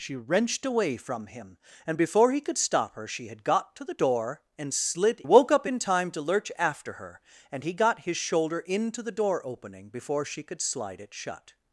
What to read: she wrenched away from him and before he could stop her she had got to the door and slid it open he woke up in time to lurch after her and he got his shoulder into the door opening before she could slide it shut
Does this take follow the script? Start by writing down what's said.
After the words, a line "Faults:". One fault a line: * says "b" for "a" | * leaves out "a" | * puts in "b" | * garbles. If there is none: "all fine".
she wrenched away from him and before he could stop her she had got to the door and slid woke up in time to lurch after her and he got his shoulder into the door opening before she could slide it shut
Faults:
* leaves out "it open he"